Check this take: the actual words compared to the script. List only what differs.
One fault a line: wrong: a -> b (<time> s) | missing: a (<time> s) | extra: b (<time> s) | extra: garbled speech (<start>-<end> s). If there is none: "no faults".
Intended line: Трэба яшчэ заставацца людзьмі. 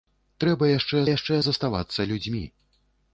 extra: яшчэ (1.1 s)